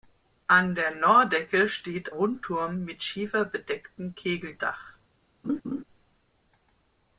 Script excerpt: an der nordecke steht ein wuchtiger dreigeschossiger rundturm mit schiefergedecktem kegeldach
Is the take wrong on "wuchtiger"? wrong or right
wrong